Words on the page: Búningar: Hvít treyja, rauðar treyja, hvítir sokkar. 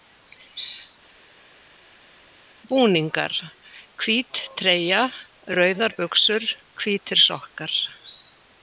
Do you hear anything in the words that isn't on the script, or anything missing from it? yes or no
yes